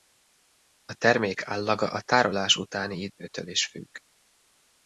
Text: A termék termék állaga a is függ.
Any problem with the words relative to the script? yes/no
yes